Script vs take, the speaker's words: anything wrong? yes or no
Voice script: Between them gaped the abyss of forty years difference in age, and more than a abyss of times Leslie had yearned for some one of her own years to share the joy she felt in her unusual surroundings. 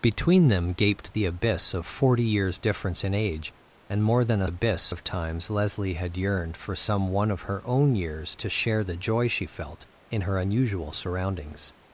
no